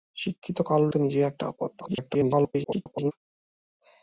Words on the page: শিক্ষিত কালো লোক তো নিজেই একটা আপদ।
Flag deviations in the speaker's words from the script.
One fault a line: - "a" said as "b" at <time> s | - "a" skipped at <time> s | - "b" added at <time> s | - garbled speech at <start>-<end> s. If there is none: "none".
- "লোক" skipped at 0.9 s
- garbled speech at 1.8-3.1 s